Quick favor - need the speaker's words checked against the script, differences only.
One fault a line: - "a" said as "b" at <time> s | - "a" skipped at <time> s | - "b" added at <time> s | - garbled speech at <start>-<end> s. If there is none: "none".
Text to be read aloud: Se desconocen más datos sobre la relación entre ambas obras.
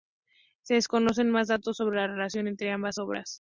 none